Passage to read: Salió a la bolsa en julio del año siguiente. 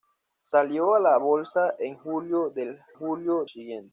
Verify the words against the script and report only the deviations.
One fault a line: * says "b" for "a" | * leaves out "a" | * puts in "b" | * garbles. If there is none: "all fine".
* says "julio" for "año"